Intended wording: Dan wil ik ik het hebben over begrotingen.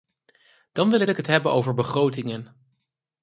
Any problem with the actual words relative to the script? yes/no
no